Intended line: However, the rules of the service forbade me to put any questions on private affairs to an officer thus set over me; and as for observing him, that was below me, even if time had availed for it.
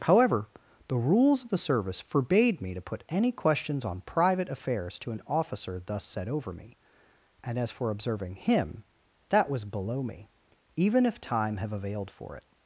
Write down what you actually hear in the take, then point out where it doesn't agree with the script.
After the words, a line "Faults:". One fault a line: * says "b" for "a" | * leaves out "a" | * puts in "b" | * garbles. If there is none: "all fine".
However, the rules of the service forbade me to put any questions on private affairs to an officer thus set over me; and as for observing him, that was below me, even if time have availed for it.
Faults:
* says "have" for "had"